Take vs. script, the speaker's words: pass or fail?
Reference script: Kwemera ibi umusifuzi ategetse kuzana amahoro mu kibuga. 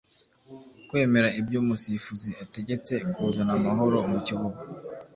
fail